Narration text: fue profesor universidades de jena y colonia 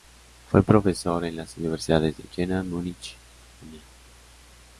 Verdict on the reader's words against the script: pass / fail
fail